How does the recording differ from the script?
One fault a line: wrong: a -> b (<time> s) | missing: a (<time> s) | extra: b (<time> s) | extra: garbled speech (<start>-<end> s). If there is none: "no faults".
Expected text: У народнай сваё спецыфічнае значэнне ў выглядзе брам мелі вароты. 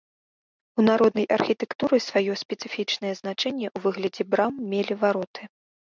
extra: архітэктуры (1.4 s)